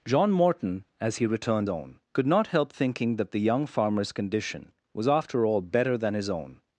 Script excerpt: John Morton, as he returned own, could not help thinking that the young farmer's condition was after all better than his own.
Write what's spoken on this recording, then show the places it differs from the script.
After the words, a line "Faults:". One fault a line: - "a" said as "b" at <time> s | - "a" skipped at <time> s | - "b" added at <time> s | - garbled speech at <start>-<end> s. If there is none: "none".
John Morton, as he returned own, could not help thinking that the young farmer's condition was after all better than his own.
Faults:
none